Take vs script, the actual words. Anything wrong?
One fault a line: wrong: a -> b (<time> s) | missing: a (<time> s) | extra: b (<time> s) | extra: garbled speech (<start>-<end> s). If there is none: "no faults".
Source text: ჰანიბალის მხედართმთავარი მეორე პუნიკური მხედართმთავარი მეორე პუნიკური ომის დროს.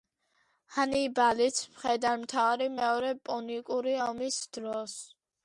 missing: მხედართმთავარი მეორე პუნიკური (4.0 s)